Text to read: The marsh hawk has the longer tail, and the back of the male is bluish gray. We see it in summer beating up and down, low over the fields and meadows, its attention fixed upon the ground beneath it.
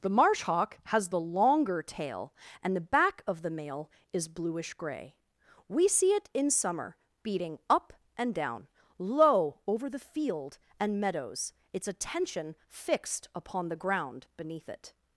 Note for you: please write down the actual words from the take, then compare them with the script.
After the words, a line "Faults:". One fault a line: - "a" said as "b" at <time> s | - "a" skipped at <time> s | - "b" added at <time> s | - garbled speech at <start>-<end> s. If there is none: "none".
The marsh hawk has the longer tail, and the back of the male is bluish gray. We see it in summer beating up and down, low over the field and meadows, its attention fixed upon the ground beneath it.
Faults:
- "fields" said as "field" at 10.0 s